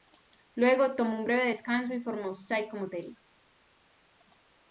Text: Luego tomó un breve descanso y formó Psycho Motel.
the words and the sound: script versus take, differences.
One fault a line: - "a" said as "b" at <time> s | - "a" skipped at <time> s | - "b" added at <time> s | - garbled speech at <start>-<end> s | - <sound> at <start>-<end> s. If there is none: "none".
none